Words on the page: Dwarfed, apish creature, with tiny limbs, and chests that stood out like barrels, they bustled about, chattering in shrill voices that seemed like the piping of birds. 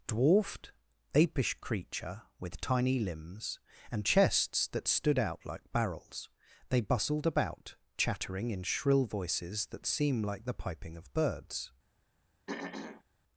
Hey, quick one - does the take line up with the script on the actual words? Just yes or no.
no